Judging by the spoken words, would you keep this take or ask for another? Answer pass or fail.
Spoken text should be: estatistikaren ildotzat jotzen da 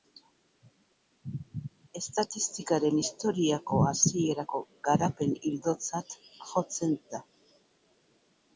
fail